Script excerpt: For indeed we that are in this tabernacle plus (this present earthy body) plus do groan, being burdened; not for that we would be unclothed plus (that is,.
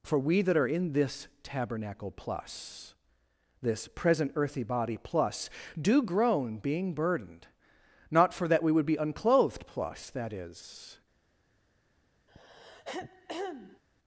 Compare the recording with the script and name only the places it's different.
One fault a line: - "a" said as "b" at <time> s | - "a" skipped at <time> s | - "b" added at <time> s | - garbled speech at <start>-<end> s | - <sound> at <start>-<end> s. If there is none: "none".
- "indeed" skipped at 0.2 s
- throat clearing at 12.3-13.8 s